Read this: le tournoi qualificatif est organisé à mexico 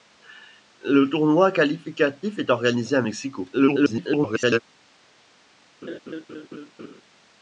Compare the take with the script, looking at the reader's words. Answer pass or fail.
fail